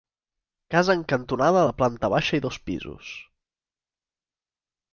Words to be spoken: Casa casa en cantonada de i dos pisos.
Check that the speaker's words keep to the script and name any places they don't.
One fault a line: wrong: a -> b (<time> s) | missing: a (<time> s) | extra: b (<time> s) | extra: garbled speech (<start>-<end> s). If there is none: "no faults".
missing: casa (0.9 s)
extra: planta baixa (1.8 s)